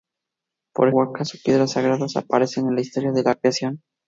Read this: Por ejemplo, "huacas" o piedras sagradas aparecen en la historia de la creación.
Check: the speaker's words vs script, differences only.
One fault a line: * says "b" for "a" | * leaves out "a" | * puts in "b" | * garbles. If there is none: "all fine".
* leaves out "ejemplo"